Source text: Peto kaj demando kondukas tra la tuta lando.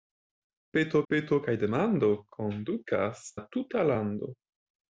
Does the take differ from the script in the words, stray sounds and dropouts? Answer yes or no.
yes